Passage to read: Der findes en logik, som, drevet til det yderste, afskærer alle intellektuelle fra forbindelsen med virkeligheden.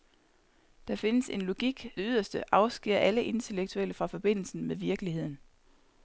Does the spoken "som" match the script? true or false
false